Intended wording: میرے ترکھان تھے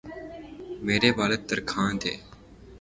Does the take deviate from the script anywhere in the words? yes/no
yes